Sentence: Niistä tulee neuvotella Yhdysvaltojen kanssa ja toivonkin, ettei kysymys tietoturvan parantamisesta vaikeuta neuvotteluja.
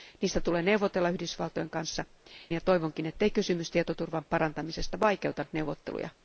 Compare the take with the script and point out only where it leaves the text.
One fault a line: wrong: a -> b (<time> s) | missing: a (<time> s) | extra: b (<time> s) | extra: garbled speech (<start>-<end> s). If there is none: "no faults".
no faults